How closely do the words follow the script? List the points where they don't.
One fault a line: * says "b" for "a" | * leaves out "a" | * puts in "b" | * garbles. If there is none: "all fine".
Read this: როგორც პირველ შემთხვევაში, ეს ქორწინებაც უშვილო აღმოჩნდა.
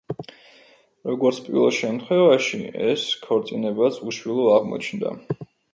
all fine